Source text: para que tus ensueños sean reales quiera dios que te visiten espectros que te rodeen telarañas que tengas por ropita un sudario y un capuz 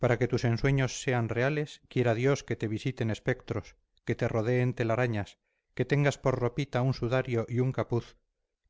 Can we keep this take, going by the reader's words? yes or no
yes